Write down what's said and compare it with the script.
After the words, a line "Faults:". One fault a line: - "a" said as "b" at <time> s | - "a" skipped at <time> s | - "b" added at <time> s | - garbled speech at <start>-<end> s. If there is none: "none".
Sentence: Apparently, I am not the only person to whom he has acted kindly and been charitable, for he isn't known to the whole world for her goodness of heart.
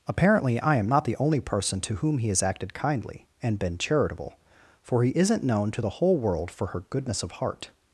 Apparently, I am not the only person to whom he has acted kindly and been charitable, for he isn't known to the whole world for her goodness of heart.
Faults:
none